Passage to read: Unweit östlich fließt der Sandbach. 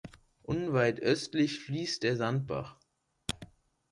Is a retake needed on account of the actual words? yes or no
no